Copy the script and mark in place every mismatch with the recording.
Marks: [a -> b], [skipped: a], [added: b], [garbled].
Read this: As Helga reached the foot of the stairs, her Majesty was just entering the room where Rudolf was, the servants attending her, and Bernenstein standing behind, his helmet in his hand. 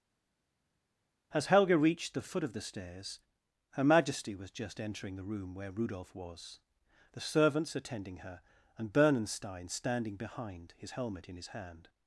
As Helga reached the foot of the stairs, her Majesty was just entering the room where Rudolf was, the servants attending her, and Bernenstein standing behind, his helmet in his hand.